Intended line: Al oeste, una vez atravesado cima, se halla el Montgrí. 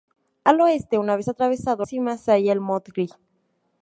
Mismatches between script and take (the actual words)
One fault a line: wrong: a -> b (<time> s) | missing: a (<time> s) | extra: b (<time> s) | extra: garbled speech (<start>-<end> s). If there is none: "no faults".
no faults